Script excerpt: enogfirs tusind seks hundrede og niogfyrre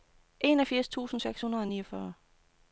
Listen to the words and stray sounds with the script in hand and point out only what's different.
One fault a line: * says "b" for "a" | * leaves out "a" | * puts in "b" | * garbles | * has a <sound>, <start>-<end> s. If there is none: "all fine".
all fine